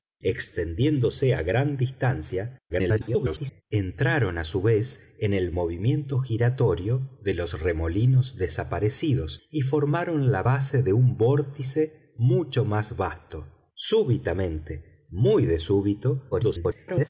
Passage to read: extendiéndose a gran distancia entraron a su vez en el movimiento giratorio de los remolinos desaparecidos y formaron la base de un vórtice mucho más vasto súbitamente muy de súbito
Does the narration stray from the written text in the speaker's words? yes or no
yes